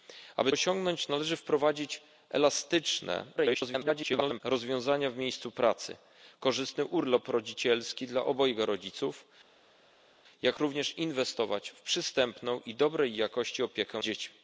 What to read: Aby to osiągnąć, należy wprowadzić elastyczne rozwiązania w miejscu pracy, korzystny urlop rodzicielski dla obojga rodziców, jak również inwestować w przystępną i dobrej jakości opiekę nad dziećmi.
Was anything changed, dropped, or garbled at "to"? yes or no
yes